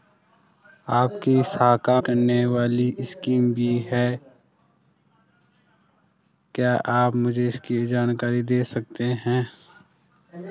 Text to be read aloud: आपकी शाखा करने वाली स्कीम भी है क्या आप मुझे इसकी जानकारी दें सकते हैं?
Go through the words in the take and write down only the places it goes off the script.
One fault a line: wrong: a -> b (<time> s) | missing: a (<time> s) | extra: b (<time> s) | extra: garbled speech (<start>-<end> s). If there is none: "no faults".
no faults